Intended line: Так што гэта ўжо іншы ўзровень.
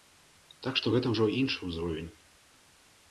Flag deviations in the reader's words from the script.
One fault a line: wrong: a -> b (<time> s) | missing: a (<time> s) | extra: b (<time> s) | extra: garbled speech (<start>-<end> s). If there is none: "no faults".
no faults